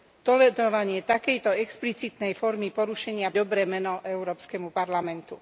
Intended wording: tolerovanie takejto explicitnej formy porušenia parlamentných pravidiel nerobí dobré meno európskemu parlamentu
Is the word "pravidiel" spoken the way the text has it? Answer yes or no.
no